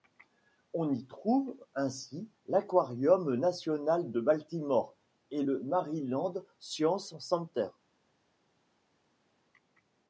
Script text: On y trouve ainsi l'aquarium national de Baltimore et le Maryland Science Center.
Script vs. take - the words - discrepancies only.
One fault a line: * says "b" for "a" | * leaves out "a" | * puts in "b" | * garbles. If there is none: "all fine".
all fine